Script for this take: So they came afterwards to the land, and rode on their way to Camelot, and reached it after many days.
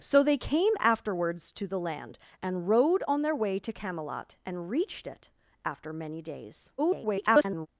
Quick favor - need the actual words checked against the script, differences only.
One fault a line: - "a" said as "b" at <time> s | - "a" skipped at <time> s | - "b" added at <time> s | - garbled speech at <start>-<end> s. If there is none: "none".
- garbled speech at 6.8-7.7 s